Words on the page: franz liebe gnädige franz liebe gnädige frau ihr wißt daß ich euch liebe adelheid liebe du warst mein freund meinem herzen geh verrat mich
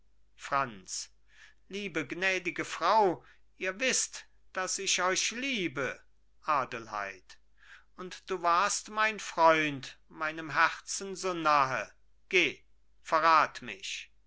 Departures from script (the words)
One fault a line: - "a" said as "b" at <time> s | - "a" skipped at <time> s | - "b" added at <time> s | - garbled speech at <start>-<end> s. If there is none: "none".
- "franz liebe gnädige" skipped at 2.6 s
- "liebe" said as "und" at 8.0 s
- "so nahe" added at 11.2 s